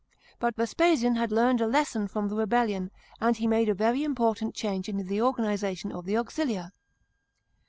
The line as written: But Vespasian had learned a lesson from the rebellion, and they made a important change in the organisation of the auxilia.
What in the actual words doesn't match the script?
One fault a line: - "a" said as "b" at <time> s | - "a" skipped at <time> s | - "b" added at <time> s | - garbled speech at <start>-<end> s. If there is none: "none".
- "they" said as "he" at 3.3 s
- "very" added at 3.7 s